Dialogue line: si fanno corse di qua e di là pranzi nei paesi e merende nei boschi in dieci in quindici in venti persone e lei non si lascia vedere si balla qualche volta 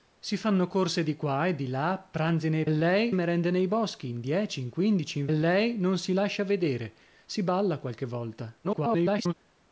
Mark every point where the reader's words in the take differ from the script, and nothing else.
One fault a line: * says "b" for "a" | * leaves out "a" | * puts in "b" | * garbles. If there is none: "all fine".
* says "lei" for "paesi"
* leaves out "venti persone e"
* garbles